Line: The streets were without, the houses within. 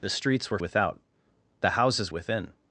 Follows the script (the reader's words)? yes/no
yes